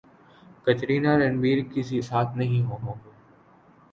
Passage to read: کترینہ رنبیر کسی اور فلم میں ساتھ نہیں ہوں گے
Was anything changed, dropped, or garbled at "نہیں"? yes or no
no